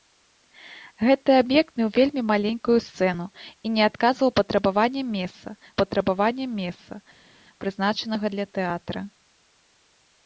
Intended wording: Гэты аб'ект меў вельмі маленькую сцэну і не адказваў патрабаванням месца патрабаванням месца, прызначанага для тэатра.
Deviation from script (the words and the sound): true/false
false